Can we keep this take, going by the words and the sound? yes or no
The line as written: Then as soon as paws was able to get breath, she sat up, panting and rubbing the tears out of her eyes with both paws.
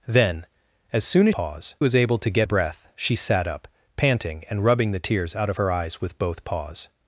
yes